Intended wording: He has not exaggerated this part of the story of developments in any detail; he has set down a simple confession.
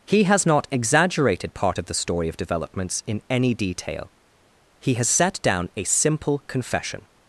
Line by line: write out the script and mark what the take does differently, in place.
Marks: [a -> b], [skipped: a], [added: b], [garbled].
He has not exaggerated [skipped: this] part of the story of developments in any detail; he has set down a simple confession.